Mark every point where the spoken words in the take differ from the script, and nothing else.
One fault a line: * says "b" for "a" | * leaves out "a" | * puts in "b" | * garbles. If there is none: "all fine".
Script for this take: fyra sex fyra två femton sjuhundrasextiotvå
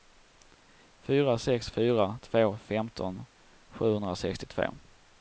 all fine